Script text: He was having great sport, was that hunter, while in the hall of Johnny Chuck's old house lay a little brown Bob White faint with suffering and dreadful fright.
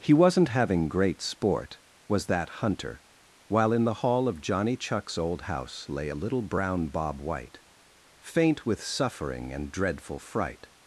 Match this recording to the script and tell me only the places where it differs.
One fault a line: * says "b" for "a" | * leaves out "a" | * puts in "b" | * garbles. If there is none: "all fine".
* says "wasn't" for "was"